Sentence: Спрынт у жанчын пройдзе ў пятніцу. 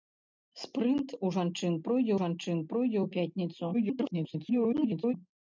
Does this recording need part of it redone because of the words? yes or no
yes